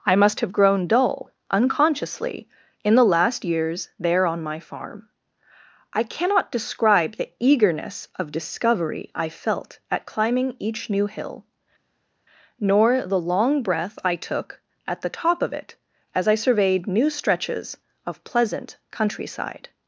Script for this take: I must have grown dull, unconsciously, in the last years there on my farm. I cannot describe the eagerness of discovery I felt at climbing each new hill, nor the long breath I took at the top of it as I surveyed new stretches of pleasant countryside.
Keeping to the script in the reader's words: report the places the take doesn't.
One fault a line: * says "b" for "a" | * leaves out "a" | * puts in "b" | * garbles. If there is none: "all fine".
all fine